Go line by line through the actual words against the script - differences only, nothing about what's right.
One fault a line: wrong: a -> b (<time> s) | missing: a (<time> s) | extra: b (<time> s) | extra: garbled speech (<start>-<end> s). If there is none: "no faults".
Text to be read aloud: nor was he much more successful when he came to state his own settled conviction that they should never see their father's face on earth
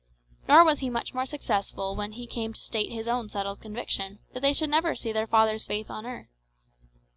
no faults